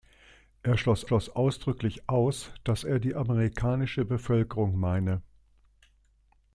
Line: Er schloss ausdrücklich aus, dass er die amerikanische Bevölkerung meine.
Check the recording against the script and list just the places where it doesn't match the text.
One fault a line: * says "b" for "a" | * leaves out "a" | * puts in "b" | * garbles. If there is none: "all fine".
* puts in "schloss"